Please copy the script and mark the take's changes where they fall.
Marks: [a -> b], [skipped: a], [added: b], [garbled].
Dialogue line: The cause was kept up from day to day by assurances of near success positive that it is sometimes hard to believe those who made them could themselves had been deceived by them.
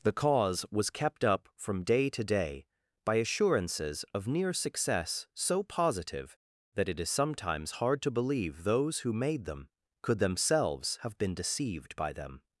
The cause was kept up from day to day by assurances of near success [added: so] positive that it is sometimes hard to believe those who made them could themselves [had -> have] been deceived by them.